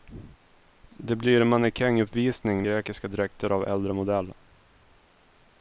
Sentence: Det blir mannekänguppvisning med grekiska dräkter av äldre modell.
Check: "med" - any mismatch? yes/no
yes